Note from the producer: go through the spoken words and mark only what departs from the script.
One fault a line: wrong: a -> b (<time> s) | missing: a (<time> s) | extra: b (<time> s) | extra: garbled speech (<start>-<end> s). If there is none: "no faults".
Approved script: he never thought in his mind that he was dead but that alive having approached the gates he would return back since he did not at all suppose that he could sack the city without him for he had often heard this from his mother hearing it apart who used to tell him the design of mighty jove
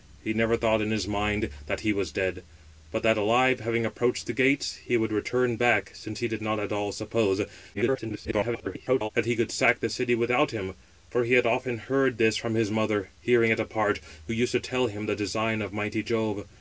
extra: garbled speech (7.7-9.1 s)